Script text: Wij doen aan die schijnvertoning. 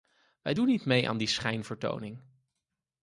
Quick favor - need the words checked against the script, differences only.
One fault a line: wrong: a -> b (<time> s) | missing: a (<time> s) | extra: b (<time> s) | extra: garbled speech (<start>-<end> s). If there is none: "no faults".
extra: niet mee (0.7 s)